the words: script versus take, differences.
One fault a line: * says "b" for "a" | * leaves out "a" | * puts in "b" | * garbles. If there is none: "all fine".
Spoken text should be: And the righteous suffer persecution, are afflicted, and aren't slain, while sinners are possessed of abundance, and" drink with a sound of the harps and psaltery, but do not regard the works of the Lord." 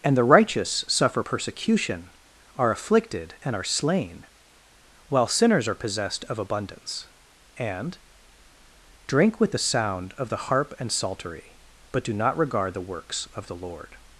* says "are" for "aren't"
* says "the" for "a"
* says "harp" for "harps"